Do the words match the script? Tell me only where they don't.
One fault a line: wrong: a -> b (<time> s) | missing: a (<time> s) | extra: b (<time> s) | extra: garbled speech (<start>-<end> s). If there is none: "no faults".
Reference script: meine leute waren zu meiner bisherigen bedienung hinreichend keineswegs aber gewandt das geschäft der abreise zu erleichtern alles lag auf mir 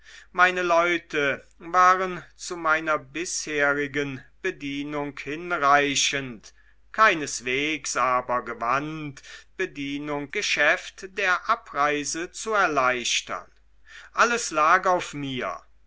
wrong: das -> bedienung (9.6 s)